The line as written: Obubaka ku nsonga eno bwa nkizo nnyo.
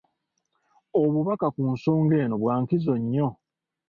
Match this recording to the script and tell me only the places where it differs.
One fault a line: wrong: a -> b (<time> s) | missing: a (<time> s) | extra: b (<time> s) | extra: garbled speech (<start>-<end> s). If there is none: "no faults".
no faults